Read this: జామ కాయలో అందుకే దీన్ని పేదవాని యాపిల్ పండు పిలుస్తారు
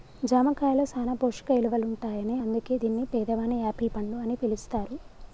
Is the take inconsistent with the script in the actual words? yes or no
yes